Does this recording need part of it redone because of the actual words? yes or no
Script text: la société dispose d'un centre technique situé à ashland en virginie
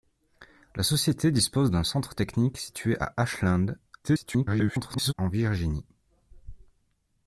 yes